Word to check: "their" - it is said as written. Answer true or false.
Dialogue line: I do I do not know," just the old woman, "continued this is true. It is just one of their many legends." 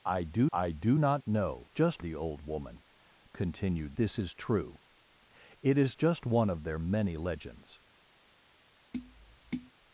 true